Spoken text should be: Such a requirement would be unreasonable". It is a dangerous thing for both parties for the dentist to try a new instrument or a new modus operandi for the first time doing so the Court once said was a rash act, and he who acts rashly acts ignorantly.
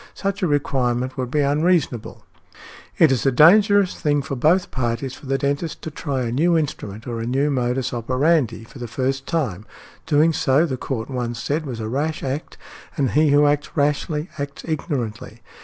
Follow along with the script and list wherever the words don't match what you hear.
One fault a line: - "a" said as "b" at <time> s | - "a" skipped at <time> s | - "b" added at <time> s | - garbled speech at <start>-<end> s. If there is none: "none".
none